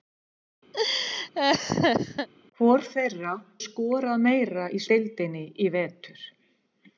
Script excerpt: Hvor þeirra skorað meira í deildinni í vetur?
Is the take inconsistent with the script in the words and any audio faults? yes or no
yes